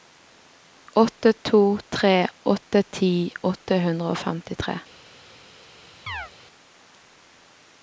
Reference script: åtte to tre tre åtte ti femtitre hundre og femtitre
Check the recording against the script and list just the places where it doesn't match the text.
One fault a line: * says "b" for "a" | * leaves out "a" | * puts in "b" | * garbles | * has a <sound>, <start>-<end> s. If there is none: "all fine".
* leaves out "tre"
* says "åtte" for "femtitre"
* has a chirp, 6.1-6.3 s